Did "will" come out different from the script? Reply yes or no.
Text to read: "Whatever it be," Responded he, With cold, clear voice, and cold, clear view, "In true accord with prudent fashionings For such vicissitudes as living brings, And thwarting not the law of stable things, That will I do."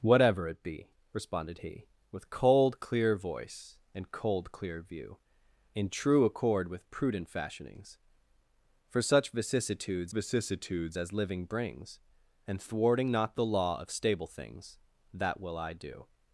no